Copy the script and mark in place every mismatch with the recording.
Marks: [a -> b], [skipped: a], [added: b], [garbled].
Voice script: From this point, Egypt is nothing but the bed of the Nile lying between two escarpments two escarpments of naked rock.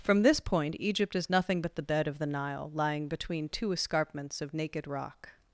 From this point, Egypt is nothing but the bed of the Nile lying between two escarpments [skipped: two escarpments] of naked rock.